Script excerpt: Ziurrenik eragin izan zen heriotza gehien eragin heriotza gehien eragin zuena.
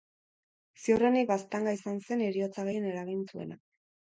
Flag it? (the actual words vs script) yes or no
yes